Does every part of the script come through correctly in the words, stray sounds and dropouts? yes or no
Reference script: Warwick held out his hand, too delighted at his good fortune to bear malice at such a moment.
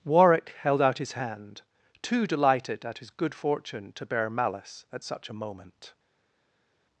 yes